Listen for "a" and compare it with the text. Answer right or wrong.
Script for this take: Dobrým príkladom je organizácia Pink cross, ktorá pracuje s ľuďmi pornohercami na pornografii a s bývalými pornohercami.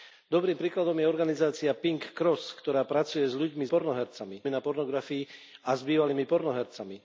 right